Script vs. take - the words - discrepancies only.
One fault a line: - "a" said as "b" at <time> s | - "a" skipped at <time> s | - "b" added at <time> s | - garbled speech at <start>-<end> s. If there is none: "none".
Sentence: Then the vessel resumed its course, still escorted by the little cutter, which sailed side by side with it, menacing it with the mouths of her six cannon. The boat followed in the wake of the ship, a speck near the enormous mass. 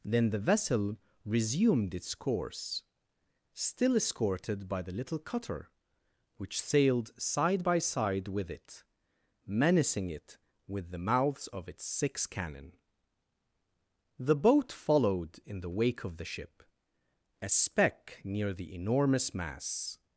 - "her" said as "its" at 11.7 s